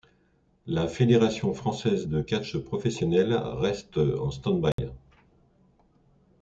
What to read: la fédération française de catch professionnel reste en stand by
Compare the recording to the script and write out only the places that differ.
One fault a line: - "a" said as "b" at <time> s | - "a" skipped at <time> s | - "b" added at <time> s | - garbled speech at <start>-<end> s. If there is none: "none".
none